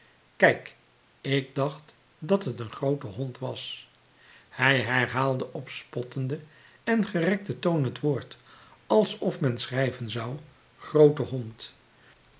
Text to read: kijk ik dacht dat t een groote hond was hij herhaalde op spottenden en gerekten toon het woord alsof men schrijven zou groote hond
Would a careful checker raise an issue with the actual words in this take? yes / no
no